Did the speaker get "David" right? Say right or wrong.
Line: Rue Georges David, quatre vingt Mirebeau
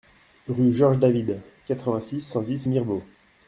right